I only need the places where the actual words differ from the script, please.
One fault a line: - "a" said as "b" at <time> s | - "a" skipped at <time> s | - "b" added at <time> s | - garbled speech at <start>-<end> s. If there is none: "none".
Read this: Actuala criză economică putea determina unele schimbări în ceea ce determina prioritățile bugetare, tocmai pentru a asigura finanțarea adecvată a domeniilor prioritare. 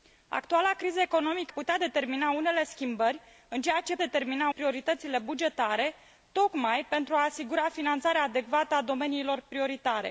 none